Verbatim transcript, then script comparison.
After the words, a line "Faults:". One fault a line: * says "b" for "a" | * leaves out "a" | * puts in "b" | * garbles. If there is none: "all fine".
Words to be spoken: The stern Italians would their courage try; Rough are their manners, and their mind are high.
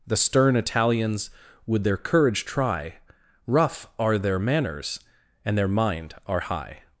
The stern Italians would their courage try; Rough are their manners, and their mind are high.
Faults:
all fine